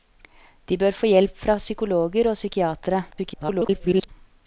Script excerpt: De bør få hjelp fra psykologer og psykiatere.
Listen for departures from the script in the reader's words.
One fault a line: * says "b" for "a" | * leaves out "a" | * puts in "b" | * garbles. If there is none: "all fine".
* garbles